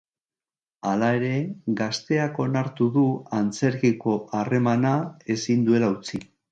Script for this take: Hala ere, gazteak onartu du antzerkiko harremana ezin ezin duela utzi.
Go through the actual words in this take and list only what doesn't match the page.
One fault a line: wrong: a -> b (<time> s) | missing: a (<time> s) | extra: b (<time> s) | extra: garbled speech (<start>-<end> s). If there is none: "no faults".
missing: ezin (5.7 s)